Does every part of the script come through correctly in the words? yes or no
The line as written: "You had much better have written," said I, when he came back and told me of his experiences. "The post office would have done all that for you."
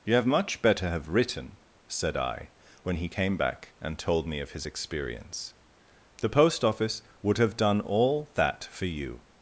no